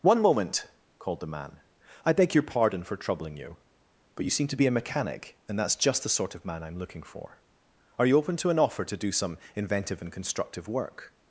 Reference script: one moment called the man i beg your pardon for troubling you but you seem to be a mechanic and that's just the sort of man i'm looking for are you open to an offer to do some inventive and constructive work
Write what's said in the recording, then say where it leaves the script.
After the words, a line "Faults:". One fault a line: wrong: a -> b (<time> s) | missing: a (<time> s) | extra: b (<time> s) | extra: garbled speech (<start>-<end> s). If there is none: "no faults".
one moment called the man i beg your pardon for troubling you but you seem to be a mechanic and that's just the sort of man i'm looking for are you open to an offer to do some inventive and constructive work
Faults:
no faults